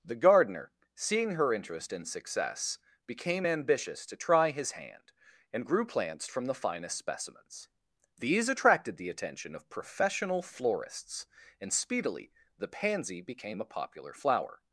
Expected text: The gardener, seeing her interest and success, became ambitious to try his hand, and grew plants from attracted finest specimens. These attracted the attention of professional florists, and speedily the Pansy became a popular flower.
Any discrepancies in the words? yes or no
yes